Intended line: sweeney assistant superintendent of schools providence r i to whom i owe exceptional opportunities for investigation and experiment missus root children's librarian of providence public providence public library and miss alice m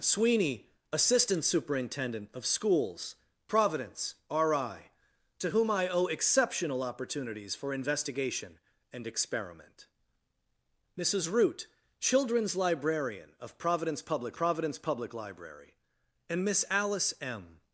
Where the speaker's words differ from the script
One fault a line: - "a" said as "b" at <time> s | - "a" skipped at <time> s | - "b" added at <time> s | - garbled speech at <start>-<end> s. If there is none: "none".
none